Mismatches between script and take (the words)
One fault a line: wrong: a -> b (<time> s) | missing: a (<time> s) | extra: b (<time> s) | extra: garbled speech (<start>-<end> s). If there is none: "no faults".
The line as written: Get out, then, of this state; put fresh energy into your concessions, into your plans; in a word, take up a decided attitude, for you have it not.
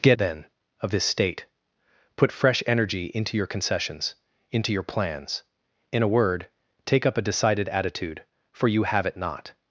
missing: out (0.2 s)